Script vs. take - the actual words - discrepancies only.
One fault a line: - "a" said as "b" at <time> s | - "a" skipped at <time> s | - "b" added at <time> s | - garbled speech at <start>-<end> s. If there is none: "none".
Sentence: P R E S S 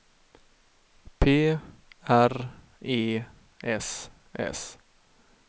none